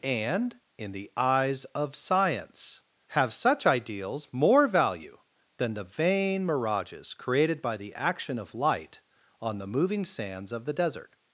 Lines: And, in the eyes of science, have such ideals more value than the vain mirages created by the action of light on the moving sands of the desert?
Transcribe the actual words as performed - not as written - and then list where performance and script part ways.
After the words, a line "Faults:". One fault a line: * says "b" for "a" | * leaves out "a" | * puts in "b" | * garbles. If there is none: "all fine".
And, in the eyes of science, have such ideals more value than the vain mirages created by the action of light on the moving sands of the desert?
Faults:
all fine